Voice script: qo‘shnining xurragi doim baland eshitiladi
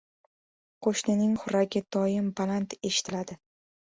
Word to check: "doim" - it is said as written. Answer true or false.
true